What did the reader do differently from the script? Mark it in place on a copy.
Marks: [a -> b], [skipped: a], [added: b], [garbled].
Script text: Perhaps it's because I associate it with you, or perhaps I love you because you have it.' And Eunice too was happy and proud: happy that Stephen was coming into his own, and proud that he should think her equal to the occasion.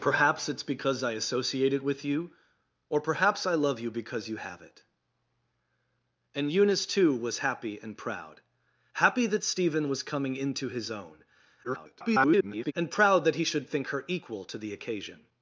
Perhaps it's because I associate it with you, or perhaps I love you because you have it.' And Eunice too was happy and proud: happy that Stephen was coming into his own, [garbled] and proud that he should think her equal to the occasion.